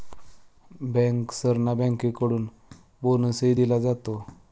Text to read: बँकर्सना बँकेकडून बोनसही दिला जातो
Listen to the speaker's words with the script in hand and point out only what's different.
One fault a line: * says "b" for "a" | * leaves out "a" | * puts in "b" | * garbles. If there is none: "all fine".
all fine